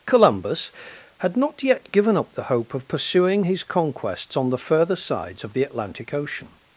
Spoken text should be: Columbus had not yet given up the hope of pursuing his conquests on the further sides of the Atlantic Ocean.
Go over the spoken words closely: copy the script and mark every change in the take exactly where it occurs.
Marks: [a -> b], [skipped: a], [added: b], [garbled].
Columbus had not yet given up the hope of pursuing his conquests on the further sides of the Atlantic Ocean.